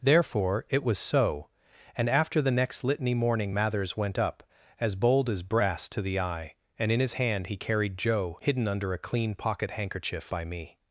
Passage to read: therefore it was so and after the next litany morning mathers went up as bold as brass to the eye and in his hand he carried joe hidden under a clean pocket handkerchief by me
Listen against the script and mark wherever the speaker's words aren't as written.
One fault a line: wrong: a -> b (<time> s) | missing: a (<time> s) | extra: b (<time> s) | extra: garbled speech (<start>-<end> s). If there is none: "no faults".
no faults